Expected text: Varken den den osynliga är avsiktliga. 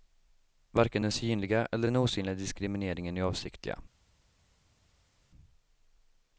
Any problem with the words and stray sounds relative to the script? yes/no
yes